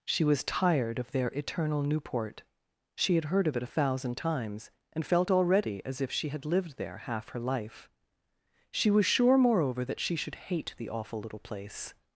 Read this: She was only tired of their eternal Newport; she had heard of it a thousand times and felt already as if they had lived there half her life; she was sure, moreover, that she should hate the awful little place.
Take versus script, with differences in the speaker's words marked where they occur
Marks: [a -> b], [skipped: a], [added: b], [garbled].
She was [skipped: only] tired of their eternal Newport; she had heard of it a thousand times and felt already as if [they -> she] had lived there half her life; she was sure, moreover, that she should hate the awful little place.